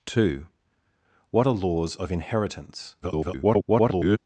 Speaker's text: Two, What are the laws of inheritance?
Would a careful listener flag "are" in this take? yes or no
yes